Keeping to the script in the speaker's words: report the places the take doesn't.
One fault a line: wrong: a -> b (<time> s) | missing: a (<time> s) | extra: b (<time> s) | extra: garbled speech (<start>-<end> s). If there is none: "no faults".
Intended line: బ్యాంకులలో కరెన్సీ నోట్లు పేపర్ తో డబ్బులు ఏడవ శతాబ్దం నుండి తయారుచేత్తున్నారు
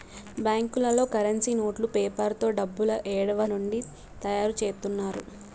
missing: శతాబ్దం (3.5 s)